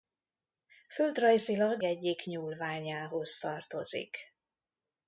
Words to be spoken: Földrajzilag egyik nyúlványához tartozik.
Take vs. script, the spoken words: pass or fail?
pass